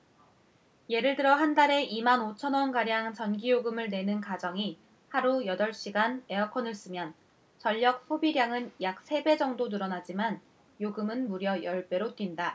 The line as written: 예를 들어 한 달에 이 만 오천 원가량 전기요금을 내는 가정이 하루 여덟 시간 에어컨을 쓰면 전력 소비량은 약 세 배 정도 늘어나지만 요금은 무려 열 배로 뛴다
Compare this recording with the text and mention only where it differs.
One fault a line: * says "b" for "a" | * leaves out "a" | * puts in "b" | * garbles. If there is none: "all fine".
all fine